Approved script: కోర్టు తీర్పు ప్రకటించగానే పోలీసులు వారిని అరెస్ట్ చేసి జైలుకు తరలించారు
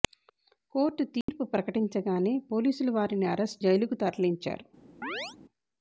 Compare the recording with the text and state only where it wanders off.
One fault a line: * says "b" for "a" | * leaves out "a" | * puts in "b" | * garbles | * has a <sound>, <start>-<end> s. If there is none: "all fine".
* has a dropout, 1.2-1.3 s
* leaves out "చేసి"
* has a chirp, 5.0-5.4 s